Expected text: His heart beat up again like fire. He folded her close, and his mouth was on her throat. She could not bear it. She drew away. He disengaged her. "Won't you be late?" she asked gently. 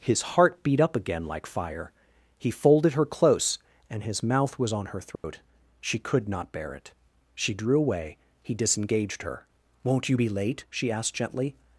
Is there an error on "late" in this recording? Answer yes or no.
no